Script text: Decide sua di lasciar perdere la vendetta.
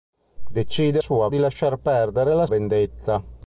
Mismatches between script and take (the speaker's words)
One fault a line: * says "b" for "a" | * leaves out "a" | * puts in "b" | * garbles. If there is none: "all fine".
all fine